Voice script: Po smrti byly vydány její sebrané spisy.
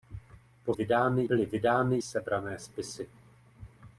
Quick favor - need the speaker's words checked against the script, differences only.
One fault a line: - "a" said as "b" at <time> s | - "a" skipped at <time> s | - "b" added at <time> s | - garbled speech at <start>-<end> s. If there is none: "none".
- "smrti" said as "vydány" at 0.7 s
- "její" skipped at 2.0 s